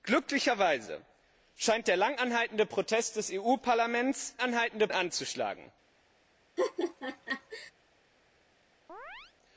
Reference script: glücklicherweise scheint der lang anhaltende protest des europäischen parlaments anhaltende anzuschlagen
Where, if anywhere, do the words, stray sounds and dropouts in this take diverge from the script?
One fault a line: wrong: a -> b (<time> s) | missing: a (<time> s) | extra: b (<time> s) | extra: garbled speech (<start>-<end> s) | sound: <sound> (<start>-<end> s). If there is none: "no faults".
sound: laugh (6.6-7.7 s)
sound: chirp (8.9-9.3 s)